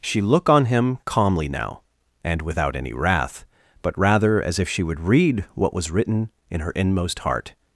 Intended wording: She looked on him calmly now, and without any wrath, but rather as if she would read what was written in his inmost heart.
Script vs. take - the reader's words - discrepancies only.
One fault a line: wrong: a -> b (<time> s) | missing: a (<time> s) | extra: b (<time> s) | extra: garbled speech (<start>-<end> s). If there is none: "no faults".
wrong: looked -> look (0.2 s)
wrong: his -> her (6.6 s)